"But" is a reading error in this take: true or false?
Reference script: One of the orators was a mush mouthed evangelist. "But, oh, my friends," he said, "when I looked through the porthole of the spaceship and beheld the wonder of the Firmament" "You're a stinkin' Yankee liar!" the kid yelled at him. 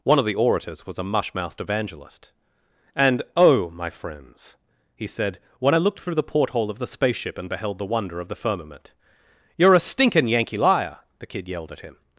true